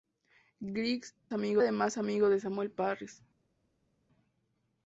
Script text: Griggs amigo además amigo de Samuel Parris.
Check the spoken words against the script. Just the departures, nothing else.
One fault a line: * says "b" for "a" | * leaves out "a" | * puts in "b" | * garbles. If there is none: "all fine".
all fine